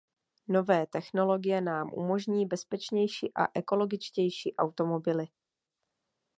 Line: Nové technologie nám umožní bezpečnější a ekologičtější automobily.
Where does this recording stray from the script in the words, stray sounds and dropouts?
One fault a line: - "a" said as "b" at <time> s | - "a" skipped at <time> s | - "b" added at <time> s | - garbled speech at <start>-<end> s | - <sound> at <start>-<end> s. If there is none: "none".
none